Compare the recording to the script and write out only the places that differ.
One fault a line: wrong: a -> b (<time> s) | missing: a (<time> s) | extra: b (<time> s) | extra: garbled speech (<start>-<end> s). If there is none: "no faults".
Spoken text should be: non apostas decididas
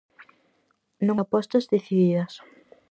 no faults